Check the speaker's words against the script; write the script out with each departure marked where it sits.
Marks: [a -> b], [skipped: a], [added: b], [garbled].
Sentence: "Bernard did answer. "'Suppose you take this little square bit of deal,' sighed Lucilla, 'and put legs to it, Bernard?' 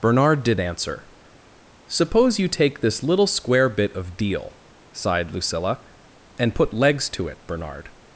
"Bernard did answer. "'Suppose you take this little square bit of deal,' sighed Lucilla, 'and put legs to it, Bernard?'